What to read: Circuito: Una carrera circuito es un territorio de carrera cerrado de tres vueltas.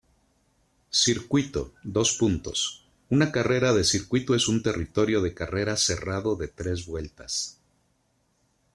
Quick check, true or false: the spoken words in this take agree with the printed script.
false